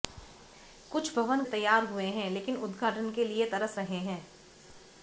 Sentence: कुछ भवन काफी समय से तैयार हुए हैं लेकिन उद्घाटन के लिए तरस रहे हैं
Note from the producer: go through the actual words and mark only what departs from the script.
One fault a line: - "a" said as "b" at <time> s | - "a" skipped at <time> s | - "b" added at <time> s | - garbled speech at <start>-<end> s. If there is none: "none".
- "काफी समय से" skipped at 1.4 s